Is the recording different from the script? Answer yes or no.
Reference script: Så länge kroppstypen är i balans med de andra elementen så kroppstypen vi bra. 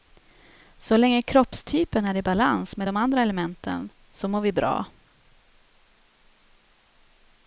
yes